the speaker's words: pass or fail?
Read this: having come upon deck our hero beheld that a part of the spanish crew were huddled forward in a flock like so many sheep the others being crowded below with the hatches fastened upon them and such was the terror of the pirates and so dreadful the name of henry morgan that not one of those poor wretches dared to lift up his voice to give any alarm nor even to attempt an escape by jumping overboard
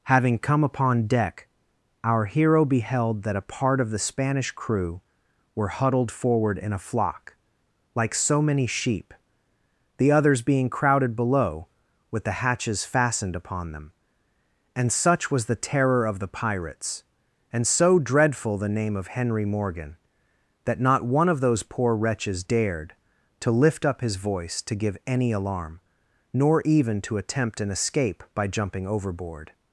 pass